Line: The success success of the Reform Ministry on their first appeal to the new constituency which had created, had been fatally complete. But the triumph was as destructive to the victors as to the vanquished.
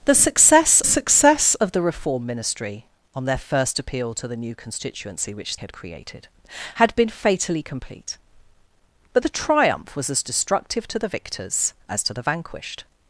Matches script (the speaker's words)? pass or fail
pass